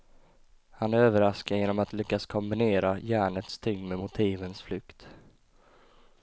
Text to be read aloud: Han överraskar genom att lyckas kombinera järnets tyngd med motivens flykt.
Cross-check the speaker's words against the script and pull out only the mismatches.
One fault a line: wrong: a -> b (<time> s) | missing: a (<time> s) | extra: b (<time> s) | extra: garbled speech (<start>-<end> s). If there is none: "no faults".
no faults